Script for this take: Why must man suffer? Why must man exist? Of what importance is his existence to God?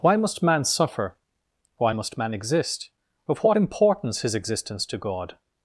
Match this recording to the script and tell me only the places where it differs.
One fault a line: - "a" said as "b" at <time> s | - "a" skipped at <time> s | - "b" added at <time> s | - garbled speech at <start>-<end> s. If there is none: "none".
- "is" skipped at 4.2 s